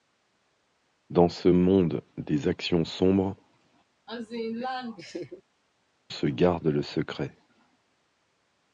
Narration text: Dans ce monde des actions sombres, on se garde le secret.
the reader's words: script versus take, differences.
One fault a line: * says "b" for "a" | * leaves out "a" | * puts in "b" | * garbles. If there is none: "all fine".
* leaves out "on"